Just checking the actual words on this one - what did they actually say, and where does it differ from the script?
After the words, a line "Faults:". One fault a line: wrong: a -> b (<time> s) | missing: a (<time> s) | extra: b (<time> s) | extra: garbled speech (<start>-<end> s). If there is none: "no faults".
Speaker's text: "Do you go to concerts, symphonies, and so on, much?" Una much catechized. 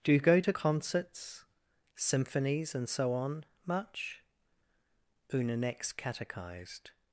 "Do you go to concerts, symphonies, and so on, much?" Una next catechized.
Faults:
wrong: much -> next (5.6 s)